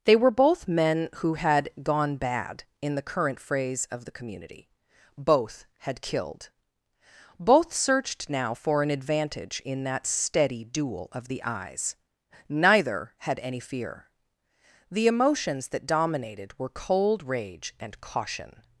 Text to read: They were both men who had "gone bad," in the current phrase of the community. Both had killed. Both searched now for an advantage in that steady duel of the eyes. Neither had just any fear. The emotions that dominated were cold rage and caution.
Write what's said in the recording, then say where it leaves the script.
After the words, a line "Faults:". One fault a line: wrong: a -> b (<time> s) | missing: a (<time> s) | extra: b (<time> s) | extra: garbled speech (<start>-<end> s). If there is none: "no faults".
They were both men who had "gone bad," in the current phrase of the community. Both had killed. Both searched now for an advantage in that steady duel of the eyes. Neither had any fear. The emotions that dominated were cold rage and caution.
Faults:
missing: just (13.4 s)